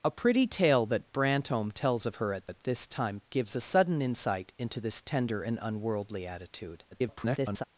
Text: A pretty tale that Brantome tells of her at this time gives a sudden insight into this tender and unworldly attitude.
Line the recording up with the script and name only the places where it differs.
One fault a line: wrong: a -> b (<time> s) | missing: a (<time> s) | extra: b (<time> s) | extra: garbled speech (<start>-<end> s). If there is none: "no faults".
extra: at (2.5 s)
extra: garbled speech (6.9-7.6 s)